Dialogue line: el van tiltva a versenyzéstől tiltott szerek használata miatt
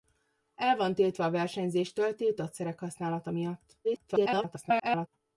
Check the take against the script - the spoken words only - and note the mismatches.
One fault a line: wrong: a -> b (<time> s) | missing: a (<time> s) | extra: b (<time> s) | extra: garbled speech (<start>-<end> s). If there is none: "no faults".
extra: garbled speech (3.8-5.1 s)